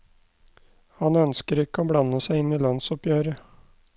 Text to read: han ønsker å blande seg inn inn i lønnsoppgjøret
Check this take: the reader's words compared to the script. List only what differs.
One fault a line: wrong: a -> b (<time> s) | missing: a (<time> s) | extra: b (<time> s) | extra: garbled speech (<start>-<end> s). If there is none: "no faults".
extra: ikke (1.6 s)
missing: inn (2.5 s)